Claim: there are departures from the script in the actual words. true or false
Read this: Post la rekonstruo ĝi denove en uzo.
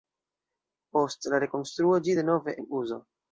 false